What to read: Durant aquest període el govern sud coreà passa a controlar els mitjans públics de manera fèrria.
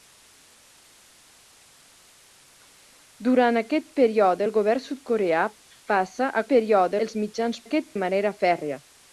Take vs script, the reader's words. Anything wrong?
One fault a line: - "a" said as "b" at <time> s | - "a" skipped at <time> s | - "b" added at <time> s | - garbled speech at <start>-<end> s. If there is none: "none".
- "controlar" said as "període" at 6.5 s
- "públics" said as "aquest" at 7.6 s